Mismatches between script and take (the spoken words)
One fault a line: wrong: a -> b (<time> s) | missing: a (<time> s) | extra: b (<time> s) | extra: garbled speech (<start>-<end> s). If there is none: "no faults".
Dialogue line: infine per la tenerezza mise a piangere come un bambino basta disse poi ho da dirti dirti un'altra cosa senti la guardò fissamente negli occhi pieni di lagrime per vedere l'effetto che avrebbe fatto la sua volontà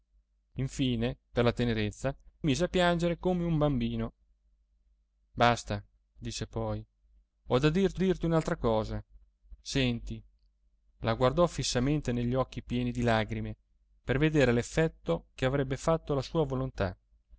no faults